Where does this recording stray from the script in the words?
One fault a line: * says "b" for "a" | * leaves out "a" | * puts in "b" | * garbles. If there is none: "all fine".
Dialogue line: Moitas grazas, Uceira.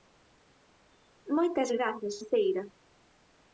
all fine